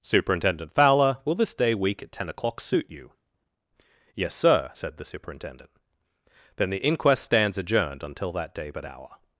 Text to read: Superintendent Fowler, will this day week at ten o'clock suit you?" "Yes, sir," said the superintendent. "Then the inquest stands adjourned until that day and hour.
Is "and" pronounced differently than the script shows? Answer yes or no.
yes